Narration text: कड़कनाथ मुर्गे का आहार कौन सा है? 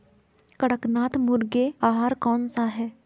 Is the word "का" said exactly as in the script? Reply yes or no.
no